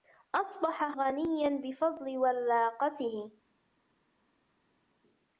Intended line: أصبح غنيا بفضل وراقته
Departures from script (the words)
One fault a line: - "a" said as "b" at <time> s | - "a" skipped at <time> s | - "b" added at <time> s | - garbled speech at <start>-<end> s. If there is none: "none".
none